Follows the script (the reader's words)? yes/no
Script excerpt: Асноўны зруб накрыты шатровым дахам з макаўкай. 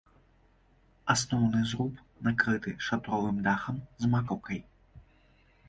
yes